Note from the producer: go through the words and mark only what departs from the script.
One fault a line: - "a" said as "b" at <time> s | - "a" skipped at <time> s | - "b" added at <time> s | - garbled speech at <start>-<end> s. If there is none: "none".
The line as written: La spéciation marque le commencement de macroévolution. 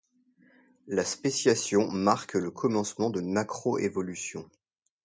none